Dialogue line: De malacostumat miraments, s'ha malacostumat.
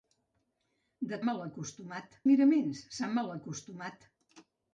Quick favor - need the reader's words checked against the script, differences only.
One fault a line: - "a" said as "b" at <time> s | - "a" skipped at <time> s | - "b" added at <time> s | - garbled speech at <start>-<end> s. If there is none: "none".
none